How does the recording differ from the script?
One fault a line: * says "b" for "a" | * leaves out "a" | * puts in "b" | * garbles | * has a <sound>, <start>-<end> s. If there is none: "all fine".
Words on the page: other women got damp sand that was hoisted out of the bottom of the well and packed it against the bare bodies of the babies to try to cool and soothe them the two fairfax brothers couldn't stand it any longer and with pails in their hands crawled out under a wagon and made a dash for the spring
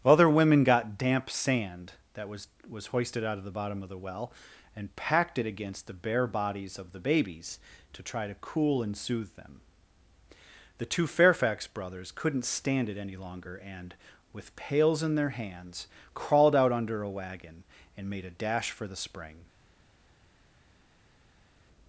* puts in "was"